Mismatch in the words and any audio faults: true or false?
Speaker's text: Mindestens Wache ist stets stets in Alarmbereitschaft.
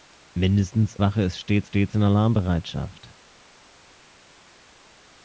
false